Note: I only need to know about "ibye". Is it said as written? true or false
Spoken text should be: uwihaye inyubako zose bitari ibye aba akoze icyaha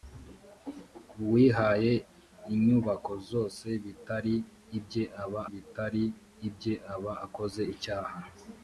true